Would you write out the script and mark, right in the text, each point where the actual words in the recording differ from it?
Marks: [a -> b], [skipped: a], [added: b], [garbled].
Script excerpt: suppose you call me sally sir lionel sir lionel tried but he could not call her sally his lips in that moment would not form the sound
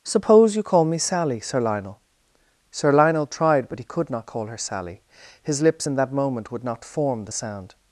suppose you call me sally sir lionel sir lionel tried but he could not call her sally his lips in that moment would not form the sound